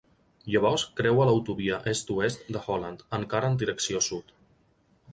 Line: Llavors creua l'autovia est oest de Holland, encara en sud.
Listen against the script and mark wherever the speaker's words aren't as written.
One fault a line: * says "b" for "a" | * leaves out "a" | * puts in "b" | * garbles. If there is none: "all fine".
* puts in "direcció"